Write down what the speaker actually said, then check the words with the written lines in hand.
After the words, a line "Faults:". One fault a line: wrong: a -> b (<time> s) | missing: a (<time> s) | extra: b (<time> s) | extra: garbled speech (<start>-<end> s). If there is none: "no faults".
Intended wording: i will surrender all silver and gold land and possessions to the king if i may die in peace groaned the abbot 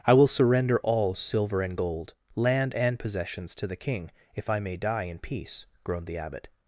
i will surrender all silver and gold land and possessions to the king if i may die in peace groaned the abbot
Faults:
no faults